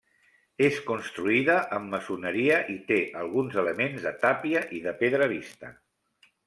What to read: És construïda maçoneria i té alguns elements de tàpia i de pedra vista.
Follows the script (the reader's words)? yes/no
no